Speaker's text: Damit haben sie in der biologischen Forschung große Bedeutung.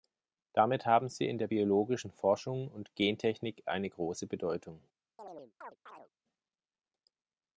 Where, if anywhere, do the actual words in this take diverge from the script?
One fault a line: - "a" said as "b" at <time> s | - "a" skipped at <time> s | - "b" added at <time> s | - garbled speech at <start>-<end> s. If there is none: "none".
- "und Gentechnik eine" added at 2.7 s